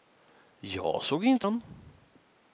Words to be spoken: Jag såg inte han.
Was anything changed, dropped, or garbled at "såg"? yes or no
no